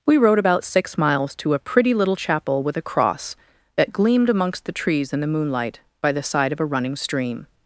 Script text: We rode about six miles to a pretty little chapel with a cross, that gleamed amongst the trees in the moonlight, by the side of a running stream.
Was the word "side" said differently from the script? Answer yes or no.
no